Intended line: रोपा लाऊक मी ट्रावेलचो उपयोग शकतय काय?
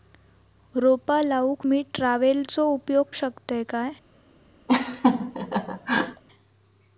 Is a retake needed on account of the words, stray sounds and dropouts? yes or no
yes